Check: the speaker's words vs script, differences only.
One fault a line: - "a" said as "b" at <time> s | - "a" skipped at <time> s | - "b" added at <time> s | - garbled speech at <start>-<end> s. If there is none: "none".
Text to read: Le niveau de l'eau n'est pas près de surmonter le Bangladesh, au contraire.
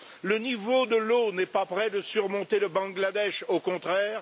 none